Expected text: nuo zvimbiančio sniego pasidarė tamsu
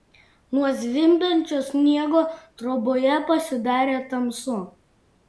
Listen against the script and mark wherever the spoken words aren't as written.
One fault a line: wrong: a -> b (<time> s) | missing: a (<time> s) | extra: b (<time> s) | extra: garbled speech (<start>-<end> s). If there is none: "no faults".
extra: troboje (2.6 s)